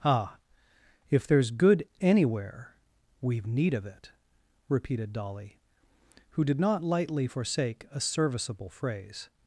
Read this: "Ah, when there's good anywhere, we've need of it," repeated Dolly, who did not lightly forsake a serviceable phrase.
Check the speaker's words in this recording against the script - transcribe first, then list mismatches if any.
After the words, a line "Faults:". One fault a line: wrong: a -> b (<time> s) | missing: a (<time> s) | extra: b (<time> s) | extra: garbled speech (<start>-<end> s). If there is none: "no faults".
"Ah, if there's good anywhere, we've need of it," repeated Dolly, who did not lightly forsake a serviceable phrase.
Faults:
wrong: when -> if (1.1 s)